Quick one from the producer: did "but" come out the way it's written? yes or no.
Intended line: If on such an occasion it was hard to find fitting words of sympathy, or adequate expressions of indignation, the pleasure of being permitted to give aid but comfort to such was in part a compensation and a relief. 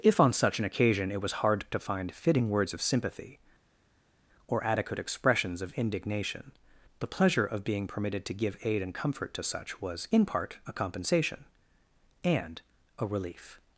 no